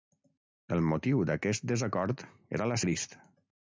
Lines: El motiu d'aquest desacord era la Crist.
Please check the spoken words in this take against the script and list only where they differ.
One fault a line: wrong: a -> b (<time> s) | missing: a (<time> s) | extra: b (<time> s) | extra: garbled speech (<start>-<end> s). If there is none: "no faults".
no faults